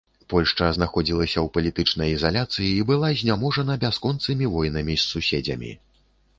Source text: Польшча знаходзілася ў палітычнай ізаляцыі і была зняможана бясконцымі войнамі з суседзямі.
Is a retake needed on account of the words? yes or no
no